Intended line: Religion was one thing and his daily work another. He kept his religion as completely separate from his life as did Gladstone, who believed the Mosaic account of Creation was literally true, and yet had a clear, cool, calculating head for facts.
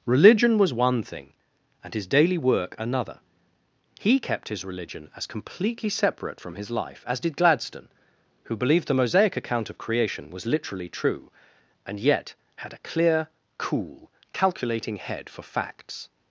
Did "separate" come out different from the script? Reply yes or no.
no